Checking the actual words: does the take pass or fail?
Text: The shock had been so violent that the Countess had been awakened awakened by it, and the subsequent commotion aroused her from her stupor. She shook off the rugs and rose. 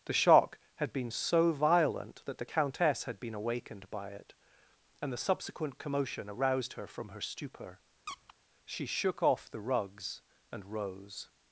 fail